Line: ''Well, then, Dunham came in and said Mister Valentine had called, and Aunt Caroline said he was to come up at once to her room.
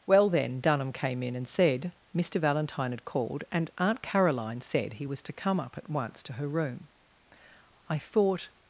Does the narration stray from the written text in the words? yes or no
yes